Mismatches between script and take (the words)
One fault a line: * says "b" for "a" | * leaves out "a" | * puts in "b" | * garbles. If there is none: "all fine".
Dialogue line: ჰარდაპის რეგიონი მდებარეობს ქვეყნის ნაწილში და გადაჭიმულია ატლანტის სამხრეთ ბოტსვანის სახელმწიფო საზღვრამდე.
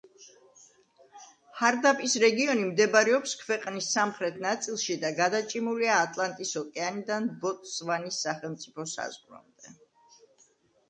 * puts in "სამხრეთ"
* says "ოკეანიდან" for "სამხრეთ"